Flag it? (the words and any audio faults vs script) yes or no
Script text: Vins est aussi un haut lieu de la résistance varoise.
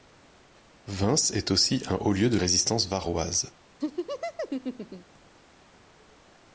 yes